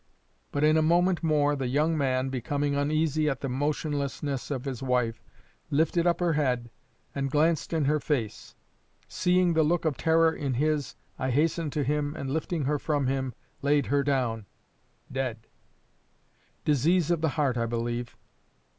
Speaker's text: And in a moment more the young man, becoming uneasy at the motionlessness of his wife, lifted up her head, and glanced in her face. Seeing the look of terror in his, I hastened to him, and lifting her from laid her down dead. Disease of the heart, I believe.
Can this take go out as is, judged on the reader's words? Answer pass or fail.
fail